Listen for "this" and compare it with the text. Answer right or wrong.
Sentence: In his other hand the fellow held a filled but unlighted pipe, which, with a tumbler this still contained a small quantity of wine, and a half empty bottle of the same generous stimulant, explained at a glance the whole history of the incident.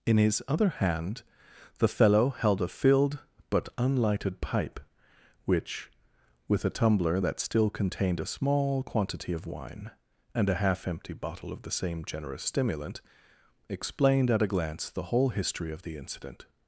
wrong